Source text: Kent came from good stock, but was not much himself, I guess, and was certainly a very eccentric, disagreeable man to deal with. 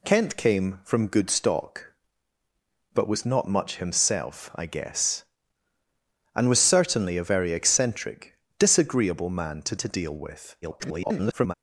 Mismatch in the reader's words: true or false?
true